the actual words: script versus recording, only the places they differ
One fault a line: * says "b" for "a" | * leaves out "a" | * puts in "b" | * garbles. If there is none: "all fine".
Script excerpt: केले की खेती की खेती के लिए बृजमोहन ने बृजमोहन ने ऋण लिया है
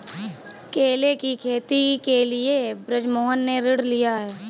* leaves out "की खेती"
* leaves out "बृजमोहन ने"